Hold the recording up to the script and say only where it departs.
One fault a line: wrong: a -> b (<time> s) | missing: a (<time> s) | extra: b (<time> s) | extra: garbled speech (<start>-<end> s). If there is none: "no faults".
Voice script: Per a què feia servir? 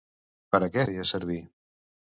no faults